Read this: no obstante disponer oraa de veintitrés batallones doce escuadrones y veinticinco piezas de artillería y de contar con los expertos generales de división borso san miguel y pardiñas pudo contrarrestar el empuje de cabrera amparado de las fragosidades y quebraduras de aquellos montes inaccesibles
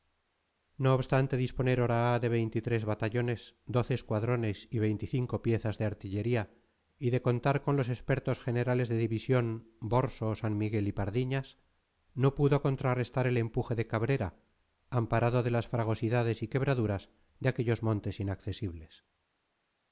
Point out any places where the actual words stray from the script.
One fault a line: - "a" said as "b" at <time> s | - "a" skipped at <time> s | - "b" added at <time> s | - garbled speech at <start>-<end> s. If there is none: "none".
- "no" added at 12.2 s